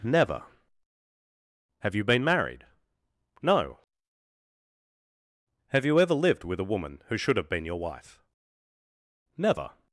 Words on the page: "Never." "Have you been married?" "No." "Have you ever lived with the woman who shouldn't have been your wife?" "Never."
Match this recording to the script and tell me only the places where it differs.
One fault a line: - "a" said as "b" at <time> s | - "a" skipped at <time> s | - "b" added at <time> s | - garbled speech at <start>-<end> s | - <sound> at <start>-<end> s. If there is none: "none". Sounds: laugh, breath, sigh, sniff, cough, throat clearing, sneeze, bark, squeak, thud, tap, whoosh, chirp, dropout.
- "the" said as "a" at 6.6 s
- "shouldn't" said as "should" at 7.2 s